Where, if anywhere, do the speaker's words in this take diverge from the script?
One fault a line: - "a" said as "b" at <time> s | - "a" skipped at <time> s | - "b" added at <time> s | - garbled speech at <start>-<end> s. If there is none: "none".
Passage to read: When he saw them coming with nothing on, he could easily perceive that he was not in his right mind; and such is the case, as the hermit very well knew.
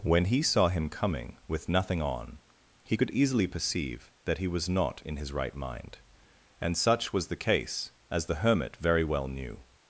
- "them" said as "him" at 0.7 s
- "is" said as "was" at 7.1 s